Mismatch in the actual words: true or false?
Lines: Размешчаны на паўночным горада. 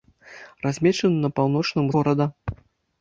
false